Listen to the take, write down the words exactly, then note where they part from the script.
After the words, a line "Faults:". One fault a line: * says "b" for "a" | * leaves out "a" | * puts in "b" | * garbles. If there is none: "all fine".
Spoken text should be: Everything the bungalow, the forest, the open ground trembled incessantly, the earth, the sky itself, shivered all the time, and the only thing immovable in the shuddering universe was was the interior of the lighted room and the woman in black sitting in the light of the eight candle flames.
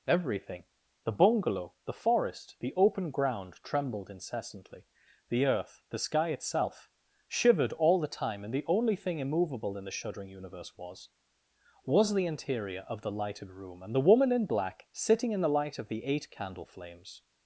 Everything the bungalow, the forest, the open ground trembled incessantly, the earth, the sky itself, shivered all the time, and the only thing immovable in the shuddering universe was was the interior of the lighted room and the woman in black sitting in the light of the eight candle flames.
Faults:
all fine